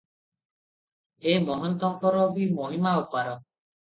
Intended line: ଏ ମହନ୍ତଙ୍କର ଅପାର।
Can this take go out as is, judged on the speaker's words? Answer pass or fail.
fail